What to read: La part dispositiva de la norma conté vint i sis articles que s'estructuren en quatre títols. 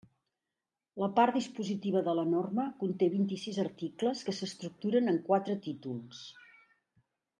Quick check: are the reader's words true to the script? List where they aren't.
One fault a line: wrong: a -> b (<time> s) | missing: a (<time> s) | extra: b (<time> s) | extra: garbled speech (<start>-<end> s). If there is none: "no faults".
no faults